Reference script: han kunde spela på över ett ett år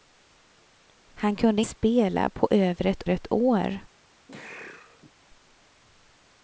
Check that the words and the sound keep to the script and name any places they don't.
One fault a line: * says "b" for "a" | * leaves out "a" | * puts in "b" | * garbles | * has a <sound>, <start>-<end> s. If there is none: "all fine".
* has a sneeze, 4.3-5.1 s